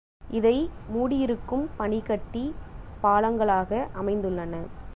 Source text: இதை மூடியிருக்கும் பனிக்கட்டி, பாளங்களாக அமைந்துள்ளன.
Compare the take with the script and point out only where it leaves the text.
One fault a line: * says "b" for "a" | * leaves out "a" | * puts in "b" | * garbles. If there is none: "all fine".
all fine